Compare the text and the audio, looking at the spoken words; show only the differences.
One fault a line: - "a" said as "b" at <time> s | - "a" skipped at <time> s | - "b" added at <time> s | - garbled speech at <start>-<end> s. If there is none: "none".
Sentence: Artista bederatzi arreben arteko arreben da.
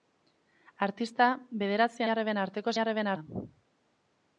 none